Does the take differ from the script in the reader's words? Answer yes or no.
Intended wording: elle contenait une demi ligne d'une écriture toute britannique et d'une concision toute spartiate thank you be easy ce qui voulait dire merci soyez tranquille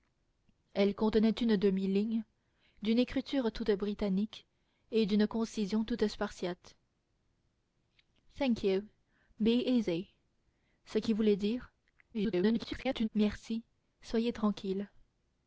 yes